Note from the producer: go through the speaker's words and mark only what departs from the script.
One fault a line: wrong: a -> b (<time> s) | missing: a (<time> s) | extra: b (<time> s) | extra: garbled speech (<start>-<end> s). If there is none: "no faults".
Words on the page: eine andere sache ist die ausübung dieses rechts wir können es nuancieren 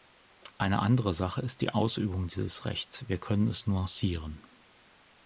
no faults